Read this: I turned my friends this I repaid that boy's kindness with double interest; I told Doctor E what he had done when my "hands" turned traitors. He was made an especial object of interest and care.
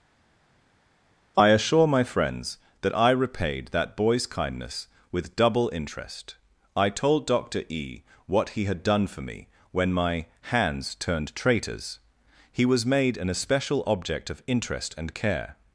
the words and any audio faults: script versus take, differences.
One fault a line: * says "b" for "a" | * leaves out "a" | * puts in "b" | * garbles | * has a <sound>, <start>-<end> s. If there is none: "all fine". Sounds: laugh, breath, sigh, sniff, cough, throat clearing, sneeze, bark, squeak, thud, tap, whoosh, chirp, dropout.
* says "assure" for "turned"
* says "that" for "this"
* puts in "for me"